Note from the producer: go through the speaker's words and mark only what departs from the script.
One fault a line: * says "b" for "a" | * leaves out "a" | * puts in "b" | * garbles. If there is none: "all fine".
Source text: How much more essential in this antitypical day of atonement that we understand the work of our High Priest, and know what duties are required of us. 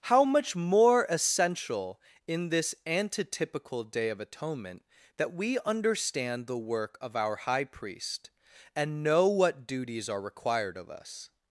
all fine